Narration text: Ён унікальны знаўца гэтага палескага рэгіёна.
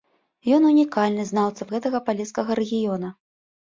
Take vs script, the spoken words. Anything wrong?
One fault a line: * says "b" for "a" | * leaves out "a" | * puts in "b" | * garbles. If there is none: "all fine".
all fine